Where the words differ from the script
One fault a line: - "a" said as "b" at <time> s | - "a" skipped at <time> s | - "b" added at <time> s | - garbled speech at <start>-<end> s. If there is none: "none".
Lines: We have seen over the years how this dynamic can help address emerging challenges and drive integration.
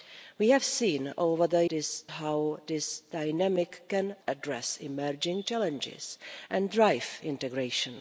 - "years" said as "this" at 1.7 s
- "help" skipped at 4.1 s